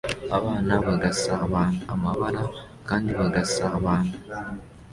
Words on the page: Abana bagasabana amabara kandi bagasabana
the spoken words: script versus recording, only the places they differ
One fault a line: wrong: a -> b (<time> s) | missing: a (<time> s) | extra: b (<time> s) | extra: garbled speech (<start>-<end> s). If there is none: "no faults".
no faults